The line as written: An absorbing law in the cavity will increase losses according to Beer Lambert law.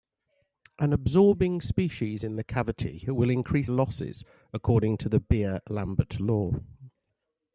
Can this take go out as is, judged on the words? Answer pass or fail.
fail